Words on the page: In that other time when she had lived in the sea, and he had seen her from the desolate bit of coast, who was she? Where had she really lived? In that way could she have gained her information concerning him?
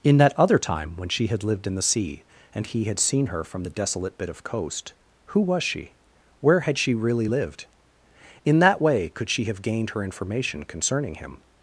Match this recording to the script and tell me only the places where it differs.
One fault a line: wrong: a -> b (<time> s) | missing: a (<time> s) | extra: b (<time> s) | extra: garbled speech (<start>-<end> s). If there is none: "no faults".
no faults